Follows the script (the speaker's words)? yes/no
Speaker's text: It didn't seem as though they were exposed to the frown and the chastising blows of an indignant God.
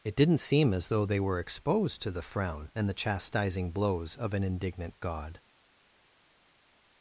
yes